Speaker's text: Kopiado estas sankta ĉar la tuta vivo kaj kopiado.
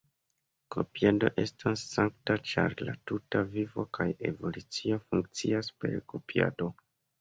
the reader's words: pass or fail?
fail